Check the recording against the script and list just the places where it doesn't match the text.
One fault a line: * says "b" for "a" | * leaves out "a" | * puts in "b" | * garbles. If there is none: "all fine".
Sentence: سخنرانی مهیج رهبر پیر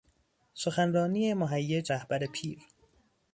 all fine